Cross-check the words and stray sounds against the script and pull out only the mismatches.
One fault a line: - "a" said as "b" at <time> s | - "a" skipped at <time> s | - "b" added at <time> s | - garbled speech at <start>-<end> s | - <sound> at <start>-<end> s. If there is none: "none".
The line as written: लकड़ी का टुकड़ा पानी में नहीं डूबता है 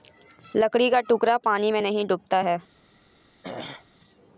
- throat clearing at 3.4-3.9 s